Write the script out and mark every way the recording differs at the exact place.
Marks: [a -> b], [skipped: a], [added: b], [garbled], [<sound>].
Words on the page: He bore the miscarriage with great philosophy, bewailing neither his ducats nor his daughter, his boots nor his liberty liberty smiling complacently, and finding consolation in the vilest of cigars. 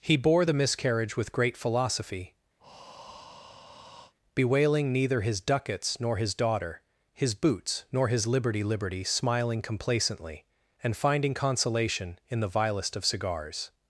He bore the miscarriage with great philosophy, [breath] bewailing neither his ducats nor his daughter, his boots nor his liberty liberty smiling complacently, and finding consolation in the vilest of cigars.